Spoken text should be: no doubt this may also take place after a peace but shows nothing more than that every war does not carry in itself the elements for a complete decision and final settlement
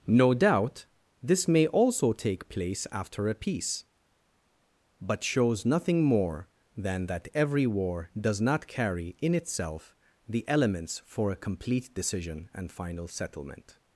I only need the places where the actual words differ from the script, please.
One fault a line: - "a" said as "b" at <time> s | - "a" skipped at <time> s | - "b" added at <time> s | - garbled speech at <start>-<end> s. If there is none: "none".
none